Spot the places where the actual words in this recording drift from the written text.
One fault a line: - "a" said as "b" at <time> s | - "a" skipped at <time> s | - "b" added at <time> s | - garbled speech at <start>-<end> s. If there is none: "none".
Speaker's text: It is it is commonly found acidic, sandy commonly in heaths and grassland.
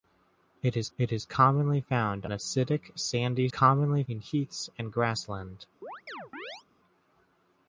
none